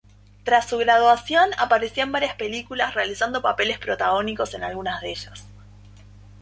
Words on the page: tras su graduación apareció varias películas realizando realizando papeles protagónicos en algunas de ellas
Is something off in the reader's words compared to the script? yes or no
yes